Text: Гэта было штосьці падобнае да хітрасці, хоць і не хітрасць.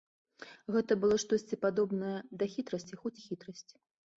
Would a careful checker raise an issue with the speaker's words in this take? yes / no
yes